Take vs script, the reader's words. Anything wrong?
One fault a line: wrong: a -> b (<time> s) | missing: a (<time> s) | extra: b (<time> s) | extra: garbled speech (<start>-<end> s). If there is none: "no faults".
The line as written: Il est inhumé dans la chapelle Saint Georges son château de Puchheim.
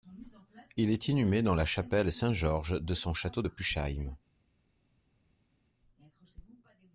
extra: de (2.8 s)